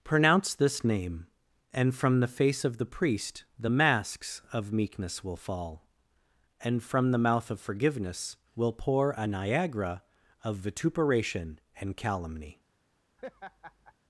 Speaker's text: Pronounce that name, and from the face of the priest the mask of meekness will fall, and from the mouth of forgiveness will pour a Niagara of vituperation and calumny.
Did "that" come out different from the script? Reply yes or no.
yes